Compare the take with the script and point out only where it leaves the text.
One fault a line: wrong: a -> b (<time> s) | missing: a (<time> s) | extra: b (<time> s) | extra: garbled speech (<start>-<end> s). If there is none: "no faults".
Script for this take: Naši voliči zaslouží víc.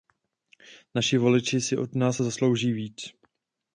extra: si od nás (1.6 s)